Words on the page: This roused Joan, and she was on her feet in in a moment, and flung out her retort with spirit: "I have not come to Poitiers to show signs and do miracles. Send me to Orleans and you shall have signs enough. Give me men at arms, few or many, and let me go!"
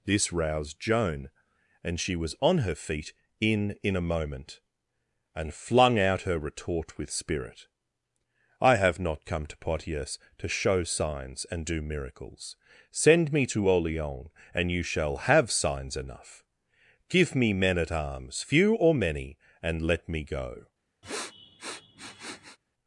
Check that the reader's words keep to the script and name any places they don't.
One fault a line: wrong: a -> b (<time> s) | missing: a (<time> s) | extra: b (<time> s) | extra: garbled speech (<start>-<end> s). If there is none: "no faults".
no faults